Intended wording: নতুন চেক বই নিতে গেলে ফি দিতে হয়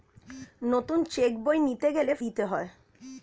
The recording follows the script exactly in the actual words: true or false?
false